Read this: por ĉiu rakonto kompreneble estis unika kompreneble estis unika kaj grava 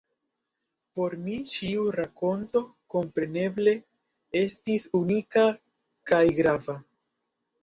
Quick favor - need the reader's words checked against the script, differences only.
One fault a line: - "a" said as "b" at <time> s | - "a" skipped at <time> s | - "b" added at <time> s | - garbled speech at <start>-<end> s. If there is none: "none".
- "mi" added at 1.2 s
- "kompreneble estis unika" skipped at 5.5 s